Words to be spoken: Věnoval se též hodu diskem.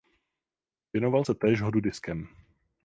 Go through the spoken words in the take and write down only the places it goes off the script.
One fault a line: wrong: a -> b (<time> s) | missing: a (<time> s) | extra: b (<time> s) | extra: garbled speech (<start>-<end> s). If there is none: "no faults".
no faults